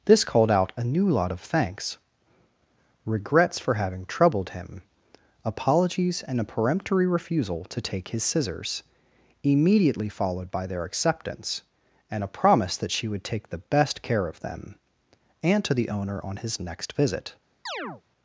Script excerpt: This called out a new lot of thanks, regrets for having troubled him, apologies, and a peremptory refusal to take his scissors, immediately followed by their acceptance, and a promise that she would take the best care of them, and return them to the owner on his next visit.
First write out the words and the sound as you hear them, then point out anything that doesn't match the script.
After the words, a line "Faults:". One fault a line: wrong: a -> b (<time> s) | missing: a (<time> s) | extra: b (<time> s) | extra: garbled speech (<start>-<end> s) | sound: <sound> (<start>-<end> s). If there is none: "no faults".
This called out a new lot of thanks, regrets for having troubled him, apologies, and a peremptory refusal to take his scissors, immediately followed by their acceptance, and a promise that she would take the best care of them, and to the owner on his next visit.
Faults:
missing: return them (15.6 s)
sound: chirp (17.7-18.0 s)